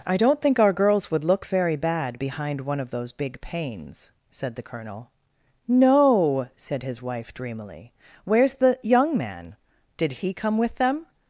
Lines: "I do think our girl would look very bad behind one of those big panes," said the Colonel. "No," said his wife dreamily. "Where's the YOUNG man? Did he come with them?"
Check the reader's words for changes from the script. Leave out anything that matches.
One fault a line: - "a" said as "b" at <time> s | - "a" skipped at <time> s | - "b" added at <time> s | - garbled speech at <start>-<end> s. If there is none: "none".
- "do" said as "don't" at 0.2 s
- "girl" said as "girls" at 0.7 s